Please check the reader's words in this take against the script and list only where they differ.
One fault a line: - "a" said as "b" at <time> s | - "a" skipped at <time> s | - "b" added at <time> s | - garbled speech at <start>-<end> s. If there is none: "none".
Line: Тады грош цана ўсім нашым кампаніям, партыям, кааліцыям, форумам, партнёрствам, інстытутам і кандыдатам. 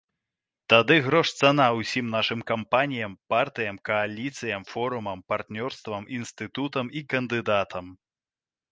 none